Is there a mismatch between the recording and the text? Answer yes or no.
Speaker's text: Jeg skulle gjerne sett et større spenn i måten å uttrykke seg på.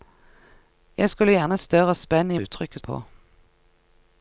yes